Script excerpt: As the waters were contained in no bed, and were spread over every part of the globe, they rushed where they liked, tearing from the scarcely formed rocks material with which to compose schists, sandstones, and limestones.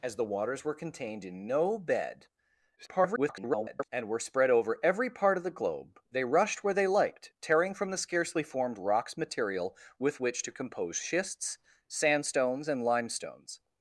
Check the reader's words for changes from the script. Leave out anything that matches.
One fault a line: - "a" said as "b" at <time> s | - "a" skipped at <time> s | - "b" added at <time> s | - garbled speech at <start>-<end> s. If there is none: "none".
- garbled speech at 2.8-3.9 s